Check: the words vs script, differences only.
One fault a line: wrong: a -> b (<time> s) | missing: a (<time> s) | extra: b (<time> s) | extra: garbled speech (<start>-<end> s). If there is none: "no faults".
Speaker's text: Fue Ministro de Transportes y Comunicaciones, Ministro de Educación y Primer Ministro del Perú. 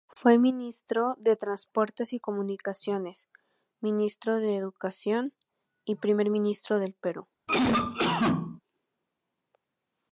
no faults